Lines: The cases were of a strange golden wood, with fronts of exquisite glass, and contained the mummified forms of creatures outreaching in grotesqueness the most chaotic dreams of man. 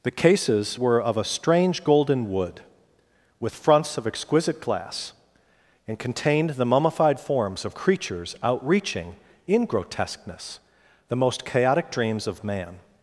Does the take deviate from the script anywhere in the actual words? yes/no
no